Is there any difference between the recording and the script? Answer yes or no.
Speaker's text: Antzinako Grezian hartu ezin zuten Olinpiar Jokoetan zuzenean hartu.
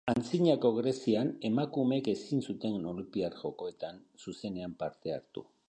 yes